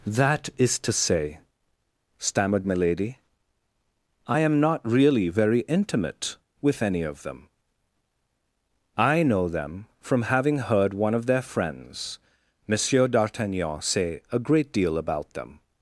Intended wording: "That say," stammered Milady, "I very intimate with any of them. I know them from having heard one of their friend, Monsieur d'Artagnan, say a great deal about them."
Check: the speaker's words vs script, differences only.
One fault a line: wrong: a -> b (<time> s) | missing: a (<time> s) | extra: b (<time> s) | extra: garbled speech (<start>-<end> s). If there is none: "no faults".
extra: is to (0.6 s)
extra: am not really (4.4 s)
wrong: friend -> friends (11.4 s)